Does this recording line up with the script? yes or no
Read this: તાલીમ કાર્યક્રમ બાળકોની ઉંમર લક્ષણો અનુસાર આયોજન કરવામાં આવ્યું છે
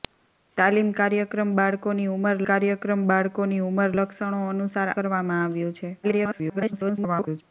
no